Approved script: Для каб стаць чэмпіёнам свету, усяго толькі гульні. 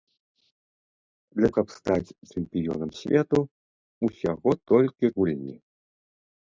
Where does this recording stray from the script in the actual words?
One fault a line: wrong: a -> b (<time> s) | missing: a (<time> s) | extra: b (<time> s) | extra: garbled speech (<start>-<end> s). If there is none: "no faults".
no faults